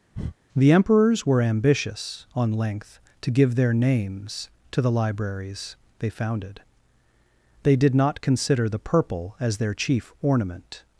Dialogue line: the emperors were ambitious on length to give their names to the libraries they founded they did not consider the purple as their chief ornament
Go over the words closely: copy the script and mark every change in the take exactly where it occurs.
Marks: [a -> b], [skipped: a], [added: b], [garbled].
the emperors were ambitious on length to give their names to the libraries they founded they did not consider the purple as their chief ornament